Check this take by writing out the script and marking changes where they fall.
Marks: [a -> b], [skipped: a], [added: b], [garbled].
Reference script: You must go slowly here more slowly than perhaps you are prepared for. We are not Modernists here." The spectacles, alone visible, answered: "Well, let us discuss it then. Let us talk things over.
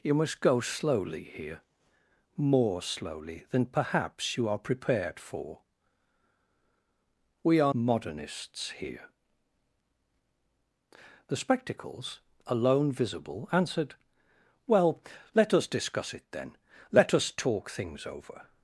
You must go slowly here more slowly than perhaps you are prepared for. We are [skipped: not] Modernists here." The spectacles, alone visible, answered: "Well, let us discuss it then. Let us talk things over.